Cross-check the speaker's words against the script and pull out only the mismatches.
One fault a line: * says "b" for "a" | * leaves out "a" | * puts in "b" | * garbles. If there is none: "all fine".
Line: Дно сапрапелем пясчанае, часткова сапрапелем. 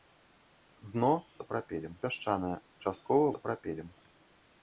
all fine